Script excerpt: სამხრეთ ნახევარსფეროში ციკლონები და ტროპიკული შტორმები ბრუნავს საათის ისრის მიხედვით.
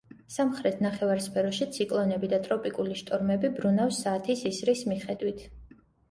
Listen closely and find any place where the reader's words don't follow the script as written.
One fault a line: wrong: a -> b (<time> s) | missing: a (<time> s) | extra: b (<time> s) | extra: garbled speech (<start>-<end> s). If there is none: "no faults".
no faults